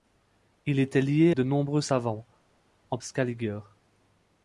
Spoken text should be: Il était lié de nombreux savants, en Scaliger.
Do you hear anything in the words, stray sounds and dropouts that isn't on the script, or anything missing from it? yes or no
no